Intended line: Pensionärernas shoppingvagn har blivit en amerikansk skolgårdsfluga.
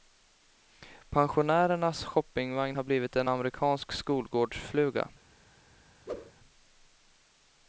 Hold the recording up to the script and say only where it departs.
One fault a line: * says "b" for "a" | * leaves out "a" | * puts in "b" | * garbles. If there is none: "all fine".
all fine